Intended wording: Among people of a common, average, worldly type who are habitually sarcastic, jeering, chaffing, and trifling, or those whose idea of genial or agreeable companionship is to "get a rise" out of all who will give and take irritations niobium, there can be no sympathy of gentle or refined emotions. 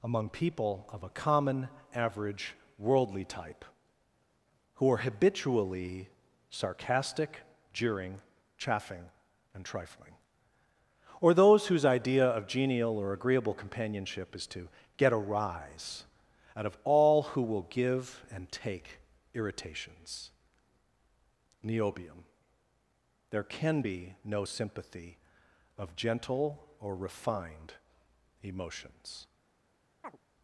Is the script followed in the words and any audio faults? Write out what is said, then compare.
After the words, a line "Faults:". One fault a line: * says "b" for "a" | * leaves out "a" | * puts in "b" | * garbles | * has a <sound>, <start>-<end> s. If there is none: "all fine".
Among people of a common, average, worldly type who are habitually sarcastic, jeering, chaffing, and trifling, or those whose idea of genial or agreeable companionship is to "get a rise" out of all who will give and take irritations niobium, there can be no sympathy of gentle or refined emotions.
Faults:
* has a chirp, 30.0-30.2 s